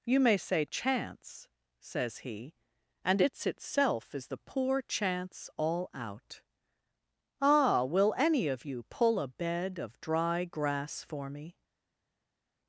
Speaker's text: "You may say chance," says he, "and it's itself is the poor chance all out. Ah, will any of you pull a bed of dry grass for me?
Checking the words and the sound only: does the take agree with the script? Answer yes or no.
yes